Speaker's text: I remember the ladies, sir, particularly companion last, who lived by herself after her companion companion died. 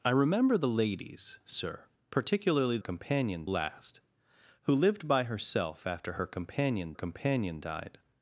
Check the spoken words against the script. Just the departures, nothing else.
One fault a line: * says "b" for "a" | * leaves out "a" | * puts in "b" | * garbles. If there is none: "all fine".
all fine